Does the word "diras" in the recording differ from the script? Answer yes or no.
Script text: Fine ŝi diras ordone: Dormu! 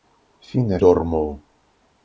yes